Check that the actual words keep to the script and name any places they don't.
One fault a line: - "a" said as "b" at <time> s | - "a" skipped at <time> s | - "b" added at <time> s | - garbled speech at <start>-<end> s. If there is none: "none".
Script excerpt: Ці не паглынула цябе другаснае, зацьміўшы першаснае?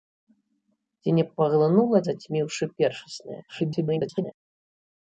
- "цябе другаснае" skipped at 2.0 s
- garbled speech at 3.5-4.3 s